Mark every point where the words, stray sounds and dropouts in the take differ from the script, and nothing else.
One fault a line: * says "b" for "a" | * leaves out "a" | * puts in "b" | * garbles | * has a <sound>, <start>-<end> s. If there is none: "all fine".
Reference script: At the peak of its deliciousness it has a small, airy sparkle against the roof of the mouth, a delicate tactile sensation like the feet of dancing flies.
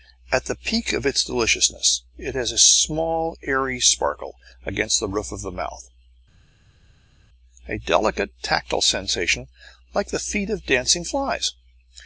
all fine